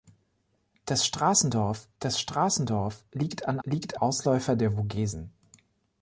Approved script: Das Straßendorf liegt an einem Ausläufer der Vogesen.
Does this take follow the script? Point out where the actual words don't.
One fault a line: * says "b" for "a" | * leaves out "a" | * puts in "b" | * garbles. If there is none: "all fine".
* puts in "das Straßendorf"
* says "liegt" for "einem"